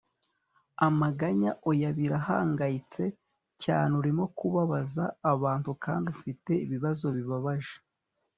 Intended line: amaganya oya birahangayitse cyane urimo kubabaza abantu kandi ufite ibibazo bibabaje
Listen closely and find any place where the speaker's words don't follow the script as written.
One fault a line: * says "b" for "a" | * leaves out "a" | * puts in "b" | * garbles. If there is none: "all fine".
all fine